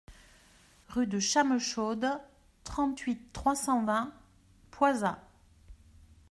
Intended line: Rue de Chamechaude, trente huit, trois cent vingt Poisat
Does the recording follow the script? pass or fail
pass